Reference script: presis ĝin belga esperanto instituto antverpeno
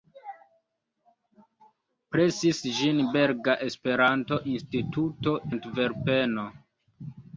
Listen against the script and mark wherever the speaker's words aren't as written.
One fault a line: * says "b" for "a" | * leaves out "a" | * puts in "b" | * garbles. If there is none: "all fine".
all fine